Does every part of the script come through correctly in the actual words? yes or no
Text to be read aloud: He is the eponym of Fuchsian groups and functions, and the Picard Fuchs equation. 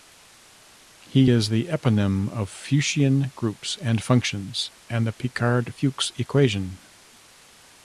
yes